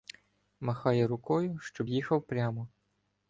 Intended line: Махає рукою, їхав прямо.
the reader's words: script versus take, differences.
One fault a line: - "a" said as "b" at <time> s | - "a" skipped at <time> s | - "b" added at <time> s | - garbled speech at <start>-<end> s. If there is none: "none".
- "щоб" added at 1.6 s